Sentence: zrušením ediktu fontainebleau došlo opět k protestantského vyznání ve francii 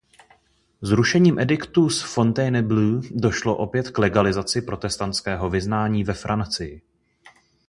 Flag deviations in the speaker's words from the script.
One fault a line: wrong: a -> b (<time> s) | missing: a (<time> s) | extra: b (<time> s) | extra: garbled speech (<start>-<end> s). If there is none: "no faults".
extra: z (1.9 s)
extra: legalizaci (4.0 s)